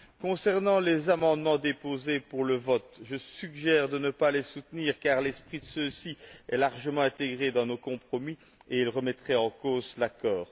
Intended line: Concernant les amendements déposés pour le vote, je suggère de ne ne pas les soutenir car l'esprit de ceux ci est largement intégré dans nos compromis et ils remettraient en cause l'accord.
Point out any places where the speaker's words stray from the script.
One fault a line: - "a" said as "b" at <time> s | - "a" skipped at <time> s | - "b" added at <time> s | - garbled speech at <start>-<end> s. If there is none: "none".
- "ne" skipped at 4.1 s